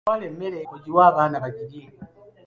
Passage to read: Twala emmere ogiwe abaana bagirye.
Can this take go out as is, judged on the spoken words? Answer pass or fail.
pass